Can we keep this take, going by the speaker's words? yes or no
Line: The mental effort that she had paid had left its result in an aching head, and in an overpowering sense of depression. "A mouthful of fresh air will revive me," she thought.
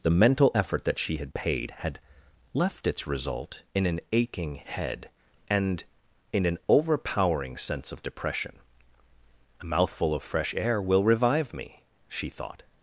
yes